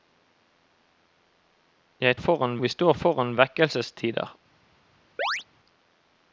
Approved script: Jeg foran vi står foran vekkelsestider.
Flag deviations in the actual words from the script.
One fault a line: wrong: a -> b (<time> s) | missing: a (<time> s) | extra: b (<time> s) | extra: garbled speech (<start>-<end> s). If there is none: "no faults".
no faults